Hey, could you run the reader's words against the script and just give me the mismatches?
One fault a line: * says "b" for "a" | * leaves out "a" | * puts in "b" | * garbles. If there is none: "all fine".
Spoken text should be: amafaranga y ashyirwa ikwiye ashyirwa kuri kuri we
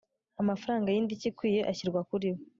* says "indishyi" for "ashyirwa"
* leaves out "kuri"